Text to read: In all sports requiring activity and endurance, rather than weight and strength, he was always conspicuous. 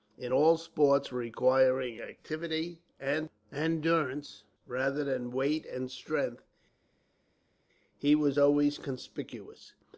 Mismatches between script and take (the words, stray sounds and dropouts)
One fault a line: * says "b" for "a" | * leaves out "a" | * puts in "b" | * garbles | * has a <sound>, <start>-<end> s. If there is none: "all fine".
all fine